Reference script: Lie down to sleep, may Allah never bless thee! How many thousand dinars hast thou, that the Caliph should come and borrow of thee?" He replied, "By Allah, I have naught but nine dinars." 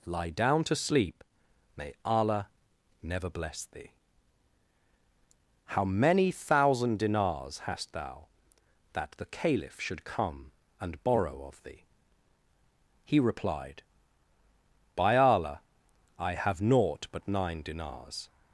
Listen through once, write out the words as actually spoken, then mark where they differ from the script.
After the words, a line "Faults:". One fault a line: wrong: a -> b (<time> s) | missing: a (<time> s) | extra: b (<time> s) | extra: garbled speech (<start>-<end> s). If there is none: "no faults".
Lie down to sleep, may Allah never bless thee! How many thousand dinars hast thou, that the Caliph should come and borrow of thee?" He replied, "By Allah, I have naught but nine dinars."
Faults:
no faults